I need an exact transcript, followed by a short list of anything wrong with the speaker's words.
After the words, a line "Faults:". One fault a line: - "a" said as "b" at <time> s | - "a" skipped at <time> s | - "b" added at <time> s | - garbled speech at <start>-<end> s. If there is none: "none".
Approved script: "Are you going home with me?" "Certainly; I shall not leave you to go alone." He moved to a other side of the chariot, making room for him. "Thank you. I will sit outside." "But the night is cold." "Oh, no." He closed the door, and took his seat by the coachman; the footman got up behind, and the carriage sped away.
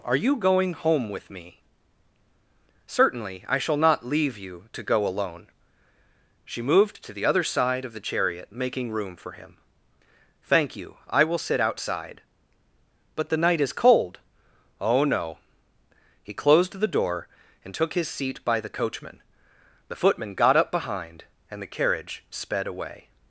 "Are you going home with me?" "Certainly; I shall not leave you to go alone." She moved to the other side of the chariot, making room for him. "Thank you. I will sit outside." "But the night is cold." "Oh, no." He closed the door, and took his seat by the coachman; the footman got up behind, and the carriage sped away.
Faults:
- "He" said as "She" at 6.4 s
- "a" said as "the" at 7.1 s